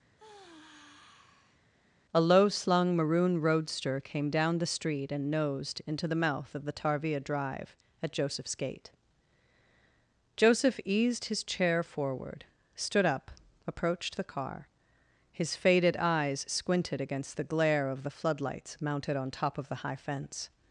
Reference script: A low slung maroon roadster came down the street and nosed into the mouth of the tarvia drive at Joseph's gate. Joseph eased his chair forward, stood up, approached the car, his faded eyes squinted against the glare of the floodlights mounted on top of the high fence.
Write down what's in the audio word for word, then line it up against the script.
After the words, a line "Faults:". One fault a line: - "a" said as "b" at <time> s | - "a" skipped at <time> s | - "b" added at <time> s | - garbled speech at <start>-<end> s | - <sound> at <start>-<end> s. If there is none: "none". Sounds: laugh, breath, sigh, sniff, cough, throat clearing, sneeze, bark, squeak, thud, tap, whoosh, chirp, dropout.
A low slung maroon roadster came down the street and nosed into the mouth of the tarvia drive at Joseph's gate. Joseph eased his chair forward, stood up, approached the car, his faded eyes squinted against the glare of the floodlights mounted on top of the high fence.
Faults:
- sigh at 0.2-1.6 s